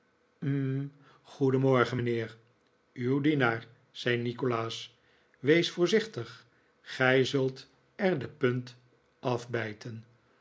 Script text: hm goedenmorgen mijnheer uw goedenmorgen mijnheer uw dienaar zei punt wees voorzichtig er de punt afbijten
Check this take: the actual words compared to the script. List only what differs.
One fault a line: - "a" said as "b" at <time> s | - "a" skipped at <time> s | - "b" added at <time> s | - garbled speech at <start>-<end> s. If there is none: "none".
- "goedenmorgen mijnheer uw" skipped at 3.2 s
- "punt" said as "nikolaas" at 4.2 s
- "gij zult" added at 6.8 s